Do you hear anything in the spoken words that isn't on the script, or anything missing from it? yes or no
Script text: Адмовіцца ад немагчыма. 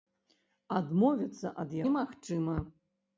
no